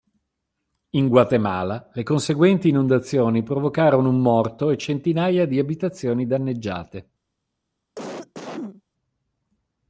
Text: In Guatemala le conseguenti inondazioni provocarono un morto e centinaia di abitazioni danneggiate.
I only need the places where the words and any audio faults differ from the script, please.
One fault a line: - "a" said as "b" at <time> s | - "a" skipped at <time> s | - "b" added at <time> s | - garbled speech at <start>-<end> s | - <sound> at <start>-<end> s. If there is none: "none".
- cough at 8.0-8.8 s